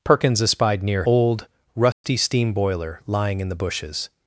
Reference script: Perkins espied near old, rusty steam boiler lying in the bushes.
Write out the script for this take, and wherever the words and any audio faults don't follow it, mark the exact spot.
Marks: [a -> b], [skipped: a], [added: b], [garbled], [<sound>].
Perkins espied near old, rusty [dropout] steam boiler lying in the bushes.